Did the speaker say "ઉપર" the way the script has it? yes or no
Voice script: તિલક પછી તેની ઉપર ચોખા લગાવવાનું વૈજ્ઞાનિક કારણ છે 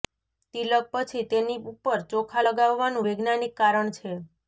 yes